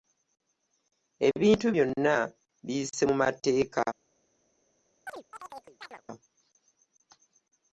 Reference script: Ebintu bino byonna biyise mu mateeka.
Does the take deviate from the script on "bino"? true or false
true